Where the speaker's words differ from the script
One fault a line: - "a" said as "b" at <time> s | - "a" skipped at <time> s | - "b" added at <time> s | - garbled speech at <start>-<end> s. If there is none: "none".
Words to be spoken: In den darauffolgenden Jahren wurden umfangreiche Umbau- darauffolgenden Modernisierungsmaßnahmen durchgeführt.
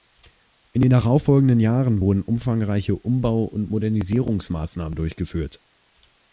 - "darauffolgenden" said as "und" at 3.5 s